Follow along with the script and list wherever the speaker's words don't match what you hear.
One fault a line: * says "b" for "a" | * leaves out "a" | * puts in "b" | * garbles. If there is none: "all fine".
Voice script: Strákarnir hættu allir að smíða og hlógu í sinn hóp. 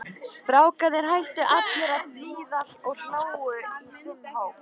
all fine